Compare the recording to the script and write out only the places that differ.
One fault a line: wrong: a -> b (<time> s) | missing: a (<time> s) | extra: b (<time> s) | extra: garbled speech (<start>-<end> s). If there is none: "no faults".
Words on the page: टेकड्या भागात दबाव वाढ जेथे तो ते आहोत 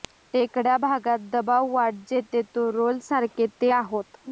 extra: रोल सारखे (2.7 s)